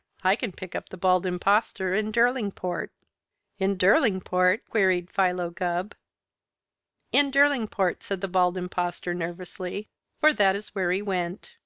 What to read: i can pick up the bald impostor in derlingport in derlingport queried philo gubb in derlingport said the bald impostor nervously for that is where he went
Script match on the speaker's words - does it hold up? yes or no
yes